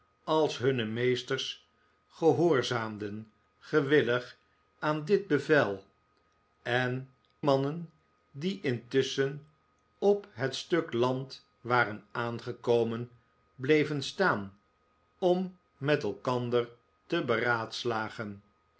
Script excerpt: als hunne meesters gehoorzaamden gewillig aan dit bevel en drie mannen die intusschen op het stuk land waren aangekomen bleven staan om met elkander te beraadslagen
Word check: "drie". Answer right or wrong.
wrong